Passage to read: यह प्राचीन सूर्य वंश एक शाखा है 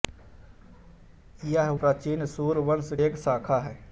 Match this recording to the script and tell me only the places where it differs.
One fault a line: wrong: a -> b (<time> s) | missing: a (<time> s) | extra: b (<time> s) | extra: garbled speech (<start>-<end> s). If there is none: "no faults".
no faults